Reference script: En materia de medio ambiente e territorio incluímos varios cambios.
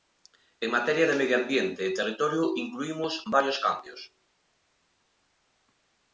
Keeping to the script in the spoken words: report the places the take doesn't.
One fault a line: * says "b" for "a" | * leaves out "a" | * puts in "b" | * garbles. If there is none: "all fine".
all fine